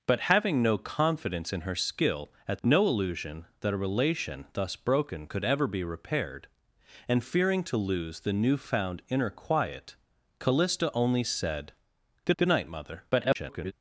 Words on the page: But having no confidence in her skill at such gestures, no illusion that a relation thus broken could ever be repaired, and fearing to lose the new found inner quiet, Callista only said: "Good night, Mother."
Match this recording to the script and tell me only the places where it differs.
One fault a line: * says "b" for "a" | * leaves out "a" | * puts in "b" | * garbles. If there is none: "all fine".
* leaves out "such gestures"
* puts in "good"
* garbles